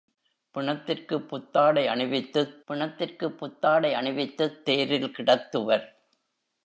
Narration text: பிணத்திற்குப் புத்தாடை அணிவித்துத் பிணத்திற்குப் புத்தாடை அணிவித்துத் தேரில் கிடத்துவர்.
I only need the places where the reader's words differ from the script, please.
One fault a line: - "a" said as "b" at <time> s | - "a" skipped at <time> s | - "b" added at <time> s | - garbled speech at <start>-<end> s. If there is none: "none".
none